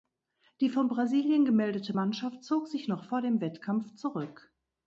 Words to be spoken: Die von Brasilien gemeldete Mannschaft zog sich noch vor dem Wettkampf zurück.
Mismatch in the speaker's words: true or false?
false